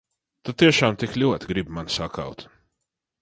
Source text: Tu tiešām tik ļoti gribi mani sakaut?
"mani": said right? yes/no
yes